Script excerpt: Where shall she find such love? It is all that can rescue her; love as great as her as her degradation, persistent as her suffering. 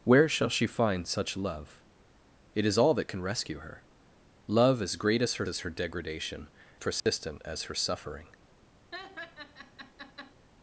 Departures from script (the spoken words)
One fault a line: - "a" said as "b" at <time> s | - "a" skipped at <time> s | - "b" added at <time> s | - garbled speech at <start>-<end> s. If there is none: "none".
none